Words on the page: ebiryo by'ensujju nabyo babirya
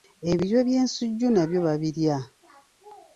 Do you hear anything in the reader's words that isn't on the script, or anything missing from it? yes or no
no